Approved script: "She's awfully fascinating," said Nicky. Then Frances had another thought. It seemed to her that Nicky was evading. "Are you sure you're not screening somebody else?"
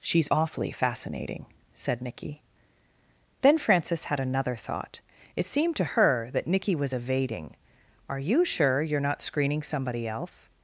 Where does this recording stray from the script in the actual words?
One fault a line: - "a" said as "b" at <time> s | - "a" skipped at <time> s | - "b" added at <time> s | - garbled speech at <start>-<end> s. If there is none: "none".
none